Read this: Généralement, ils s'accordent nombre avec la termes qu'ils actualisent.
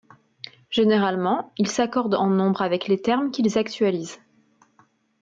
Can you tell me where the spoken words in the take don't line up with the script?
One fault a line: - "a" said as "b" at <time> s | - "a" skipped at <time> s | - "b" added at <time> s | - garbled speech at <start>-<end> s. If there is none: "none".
- "en" added at 2.1 s
- "la" said as "les" at 2.9 s